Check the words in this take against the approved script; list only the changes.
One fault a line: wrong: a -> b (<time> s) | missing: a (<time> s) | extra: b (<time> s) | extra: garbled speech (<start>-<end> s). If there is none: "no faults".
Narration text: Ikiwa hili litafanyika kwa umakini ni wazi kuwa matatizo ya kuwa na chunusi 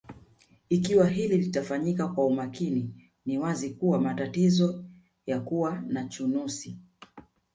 no faults